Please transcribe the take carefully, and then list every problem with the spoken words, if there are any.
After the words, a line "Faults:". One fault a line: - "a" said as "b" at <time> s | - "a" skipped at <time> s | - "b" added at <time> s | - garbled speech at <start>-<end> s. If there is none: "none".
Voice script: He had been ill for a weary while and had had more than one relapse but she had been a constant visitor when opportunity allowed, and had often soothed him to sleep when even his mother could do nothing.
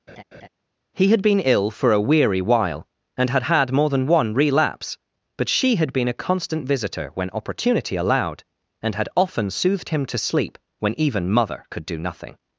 He had been ill for a weary while and had had more than one relapse but she had been a constant visitor when opportunity allowed, and had often soothed him to sleep when even mother could do nothing.
Faults:
- "his" skipped at 11.3 s